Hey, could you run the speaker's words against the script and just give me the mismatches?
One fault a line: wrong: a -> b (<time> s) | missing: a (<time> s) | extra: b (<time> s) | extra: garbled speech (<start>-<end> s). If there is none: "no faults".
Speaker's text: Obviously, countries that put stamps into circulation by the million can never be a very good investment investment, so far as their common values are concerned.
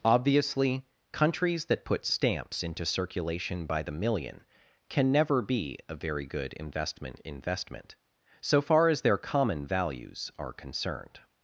no faults